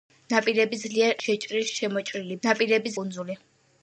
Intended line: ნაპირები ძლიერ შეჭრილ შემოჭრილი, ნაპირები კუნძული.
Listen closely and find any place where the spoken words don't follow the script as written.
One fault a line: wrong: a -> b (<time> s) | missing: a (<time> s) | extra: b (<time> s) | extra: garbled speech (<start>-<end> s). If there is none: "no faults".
no faults